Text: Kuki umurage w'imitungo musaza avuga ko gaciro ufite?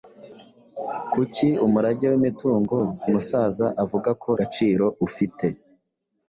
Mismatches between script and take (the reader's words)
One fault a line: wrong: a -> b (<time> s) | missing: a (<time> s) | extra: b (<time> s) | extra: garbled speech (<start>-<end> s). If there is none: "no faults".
no faults